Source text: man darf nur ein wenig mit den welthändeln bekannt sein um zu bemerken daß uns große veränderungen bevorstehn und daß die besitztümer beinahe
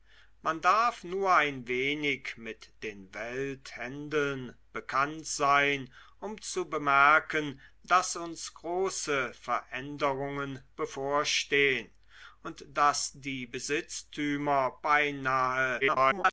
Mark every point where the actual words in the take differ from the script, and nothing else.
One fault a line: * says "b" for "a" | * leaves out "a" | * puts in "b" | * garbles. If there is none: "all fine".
* garbles